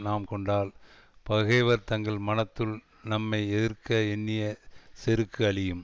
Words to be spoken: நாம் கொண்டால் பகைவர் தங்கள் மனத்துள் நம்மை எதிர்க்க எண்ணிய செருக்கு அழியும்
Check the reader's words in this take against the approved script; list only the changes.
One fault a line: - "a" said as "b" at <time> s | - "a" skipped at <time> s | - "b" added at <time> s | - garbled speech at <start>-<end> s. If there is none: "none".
none